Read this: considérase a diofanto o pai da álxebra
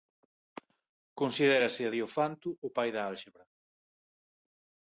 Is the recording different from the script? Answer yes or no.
no